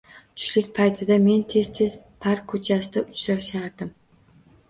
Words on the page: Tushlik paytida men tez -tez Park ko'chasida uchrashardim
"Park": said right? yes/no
yes